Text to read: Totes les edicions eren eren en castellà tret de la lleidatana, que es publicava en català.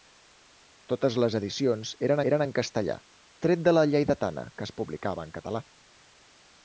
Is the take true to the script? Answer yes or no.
yes